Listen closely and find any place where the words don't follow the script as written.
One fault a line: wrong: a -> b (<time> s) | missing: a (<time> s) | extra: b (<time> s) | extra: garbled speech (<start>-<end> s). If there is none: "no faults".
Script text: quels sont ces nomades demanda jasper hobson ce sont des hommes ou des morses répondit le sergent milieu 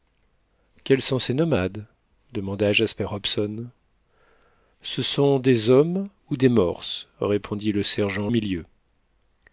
no faults